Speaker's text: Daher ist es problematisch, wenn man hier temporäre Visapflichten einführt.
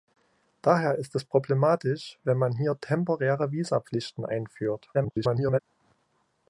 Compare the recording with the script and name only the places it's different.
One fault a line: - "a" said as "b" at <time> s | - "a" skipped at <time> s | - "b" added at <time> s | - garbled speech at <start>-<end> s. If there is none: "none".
- garbled speech at 4.9-5.6 s